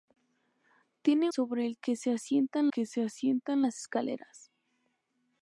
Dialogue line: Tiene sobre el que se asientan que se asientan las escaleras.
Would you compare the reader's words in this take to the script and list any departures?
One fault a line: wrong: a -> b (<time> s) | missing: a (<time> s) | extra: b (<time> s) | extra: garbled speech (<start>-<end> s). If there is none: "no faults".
no faults